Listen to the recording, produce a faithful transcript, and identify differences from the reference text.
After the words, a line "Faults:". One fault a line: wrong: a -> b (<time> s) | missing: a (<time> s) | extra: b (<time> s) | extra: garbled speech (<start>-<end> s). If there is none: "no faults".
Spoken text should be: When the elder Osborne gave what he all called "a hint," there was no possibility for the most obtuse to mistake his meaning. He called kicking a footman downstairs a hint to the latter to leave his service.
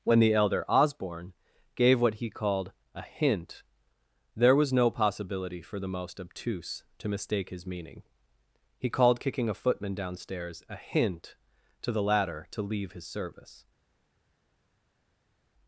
When the elder Osborne gave what he called "a hint," there was no possibility for the most obtuse to mistake his meaning. He called kicking a footman downstairs a hint to the latter to leave his service.
Faults:
missing: all (2.3 s)